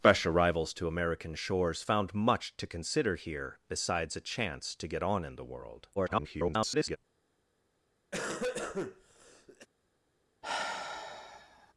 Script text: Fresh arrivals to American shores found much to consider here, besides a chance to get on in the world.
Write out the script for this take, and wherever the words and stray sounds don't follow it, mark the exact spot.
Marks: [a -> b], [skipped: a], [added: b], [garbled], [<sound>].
Fresh arrivals to American shores found much to consider here, besides a chance to get on in the world. [garbled] [cough] [sigh]